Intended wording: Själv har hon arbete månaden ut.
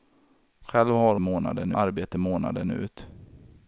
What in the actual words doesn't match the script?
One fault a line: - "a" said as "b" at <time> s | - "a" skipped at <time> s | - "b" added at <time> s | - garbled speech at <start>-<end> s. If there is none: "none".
- "hon" said as "månaden" at 1.2 s